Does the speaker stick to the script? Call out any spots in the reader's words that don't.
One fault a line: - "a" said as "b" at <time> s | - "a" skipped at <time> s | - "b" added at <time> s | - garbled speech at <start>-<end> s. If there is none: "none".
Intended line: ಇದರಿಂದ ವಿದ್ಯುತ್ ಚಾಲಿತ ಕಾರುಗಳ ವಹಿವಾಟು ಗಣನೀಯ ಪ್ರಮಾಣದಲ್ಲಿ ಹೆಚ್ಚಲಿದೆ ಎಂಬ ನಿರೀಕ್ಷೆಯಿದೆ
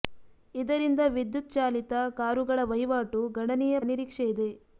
- "ಪ್ರಮಾಣದಲ್ಲಿ ಹೆಚ್ಚಲಿದೆ ಎಂಬ" skipped at 3.8 s